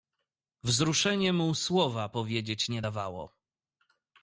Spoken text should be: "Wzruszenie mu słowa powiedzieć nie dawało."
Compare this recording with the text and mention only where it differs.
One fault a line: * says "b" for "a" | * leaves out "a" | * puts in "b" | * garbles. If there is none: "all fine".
all fine